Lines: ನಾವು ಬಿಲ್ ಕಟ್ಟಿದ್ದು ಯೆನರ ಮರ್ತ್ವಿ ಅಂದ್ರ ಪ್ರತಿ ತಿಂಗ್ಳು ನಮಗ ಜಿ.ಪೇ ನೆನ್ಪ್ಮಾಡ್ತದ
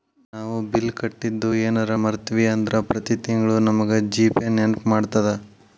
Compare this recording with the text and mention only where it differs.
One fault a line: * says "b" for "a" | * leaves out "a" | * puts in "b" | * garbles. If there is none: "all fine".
all fine